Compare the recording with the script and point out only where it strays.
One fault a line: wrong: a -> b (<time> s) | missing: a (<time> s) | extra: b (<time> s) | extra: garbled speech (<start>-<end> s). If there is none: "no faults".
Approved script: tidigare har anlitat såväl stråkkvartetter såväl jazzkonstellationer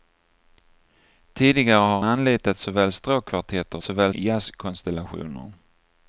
no faults